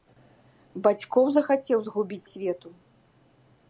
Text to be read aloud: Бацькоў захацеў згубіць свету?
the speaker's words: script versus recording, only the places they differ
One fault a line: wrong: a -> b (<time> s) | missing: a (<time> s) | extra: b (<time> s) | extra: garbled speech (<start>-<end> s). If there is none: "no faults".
no faults